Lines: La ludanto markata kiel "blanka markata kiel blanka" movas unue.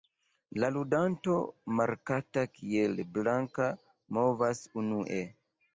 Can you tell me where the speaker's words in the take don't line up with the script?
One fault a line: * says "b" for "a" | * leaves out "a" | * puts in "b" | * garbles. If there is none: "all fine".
* leaves out "markata kiel blanka"